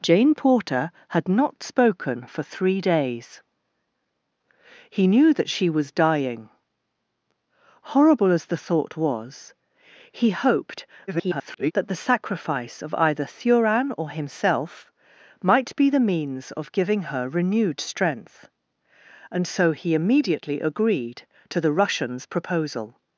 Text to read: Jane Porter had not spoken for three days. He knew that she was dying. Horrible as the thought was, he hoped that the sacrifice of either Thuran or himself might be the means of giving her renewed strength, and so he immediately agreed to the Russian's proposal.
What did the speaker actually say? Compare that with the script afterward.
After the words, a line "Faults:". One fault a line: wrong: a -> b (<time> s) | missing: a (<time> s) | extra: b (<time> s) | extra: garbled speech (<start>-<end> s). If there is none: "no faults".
Jane Porter had not spoken for three days. He knew that she was dying. Horrible as the thought was, he hoped [garbled] that the sacrifice of either Thuran or himself might be the means of giving her renewed strength, and so he immediately agreed to the Russian's proposal.
Faults:
extra: garbled speech (11.1-11.7 s)